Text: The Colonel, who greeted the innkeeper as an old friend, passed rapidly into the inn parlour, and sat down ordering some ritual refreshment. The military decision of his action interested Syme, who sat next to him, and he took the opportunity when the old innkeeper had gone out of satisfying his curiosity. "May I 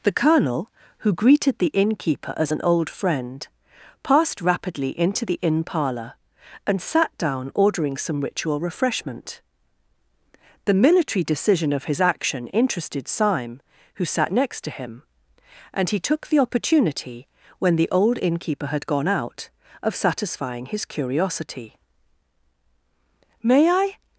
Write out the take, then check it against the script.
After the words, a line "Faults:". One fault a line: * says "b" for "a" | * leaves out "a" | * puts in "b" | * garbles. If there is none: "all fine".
The Colonel, who greeted the innkeeper as an old friend, passed rapidly into the inn parlour, and sat down ordering some ritual refreshment. The military decision of his action interested Syme, who sat next to him, and he took the opportunity when the old innkeeper had gone out of satisfying his curiosity. "May I
Faults:
all fine